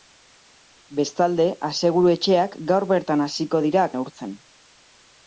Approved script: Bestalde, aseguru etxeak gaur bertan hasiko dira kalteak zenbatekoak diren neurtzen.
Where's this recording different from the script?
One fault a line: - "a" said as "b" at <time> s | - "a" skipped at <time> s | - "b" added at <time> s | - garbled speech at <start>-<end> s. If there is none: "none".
- "kalteak zenbatekoak diren" skipped at 3.9 s